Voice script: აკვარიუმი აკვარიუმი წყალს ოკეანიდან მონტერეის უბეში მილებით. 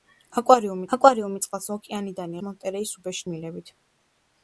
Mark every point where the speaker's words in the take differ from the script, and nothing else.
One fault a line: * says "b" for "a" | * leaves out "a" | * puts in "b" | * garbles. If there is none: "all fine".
all fine